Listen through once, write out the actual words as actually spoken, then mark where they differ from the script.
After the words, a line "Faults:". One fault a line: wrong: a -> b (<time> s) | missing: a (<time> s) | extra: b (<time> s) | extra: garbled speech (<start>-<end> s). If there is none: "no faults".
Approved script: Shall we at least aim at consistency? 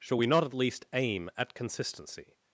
Shall we not at least aim at consistency?
Faults:
extra: not (0.3 s)